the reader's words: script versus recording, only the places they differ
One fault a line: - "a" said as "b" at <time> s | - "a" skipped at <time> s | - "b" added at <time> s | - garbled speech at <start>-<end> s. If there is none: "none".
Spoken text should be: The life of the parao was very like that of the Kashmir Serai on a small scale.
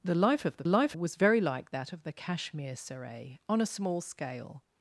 - "parao" said as "life" at 0.7 s